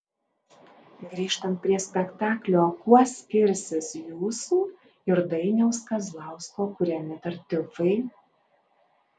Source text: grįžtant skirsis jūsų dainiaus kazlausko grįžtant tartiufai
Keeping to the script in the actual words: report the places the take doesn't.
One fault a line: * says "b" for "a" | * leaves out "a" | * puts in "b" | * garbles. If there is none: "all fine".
* puts in "prie spektaklio kuo"
* puts in "ir"
* says "kuriami" for "grįžtant"